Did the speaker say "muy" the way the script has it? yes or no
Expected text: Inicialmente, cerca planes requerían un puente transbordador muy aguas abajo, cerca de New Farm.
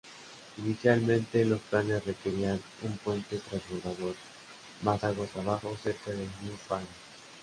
no